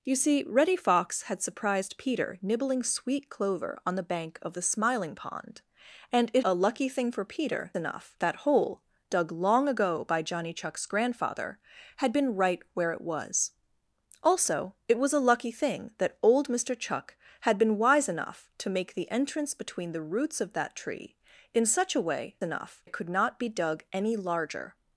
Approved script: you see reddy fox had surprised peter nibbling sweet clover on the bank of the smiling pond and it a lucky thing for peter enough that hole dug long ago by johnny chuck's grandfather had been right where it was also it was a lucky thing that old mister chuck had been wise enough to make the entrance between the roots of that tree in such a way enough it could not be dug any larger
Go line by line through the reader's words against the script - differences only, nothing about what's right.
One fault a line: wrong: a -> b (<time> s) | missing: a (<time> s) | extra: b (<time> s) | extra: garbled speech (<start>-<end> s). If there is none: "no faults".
no faults